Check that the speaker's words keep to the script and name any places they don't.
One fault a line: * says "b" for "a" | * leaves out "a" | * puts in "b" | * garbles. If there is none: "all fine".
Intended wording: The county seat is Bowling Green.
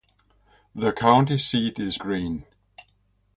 * leaves out "Bowling"